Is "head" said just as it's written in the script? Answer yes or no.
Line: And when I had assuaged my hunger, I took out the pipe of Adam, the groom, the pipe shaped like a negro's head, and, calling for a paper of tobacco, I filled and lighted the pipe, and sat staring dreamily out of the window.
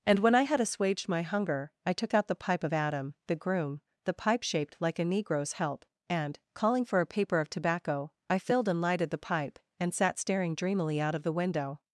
no